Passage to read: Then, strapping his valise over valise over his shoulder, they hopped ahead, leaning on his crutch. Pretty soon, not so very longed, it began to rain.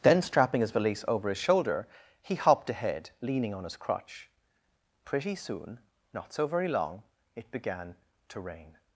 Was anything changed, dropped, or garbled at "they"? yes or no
yes